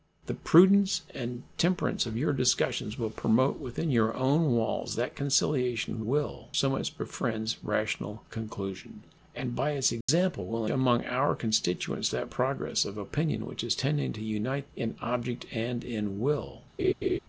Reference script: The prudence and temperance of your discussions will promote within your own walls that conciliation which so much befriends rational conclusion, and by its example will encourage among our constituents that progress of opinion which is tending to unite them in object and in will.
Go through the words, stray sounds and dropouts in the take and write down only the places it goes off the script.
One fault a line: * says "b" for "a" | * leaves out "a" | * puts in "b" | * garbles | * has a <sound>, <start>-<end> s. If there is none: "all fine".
* says "will" for "which"
* has a dropout, 10.0-10.1 s
* leaves out "encourage"
* leaves out "them"
* has a laugh, 16.8-17.2 s